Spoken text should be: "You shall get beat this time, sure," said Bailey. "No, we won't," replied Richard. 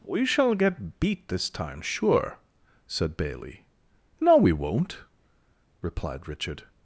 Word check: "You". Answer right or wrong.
wrong